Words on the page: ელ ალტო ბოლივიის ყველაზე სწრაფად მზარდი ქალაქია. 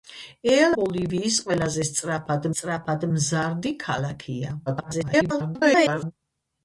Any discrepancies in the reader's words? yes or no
yes